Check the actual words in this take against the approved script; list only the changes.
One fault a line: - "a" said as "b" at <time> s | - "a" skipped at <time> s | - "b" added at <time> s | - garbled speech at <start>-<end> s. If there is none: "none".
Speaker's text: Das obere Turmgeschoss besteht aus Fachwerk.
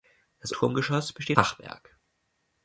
- "obere" skipped at 0.5 s
- "aus" skipped at 1.4 s